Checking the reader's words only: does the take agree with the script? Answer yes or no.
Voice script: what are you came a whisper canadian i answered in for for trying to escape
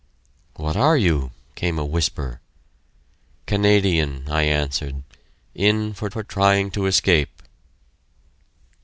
yes